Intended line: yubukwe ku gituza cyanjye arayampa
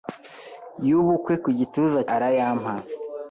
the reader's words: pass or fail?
fail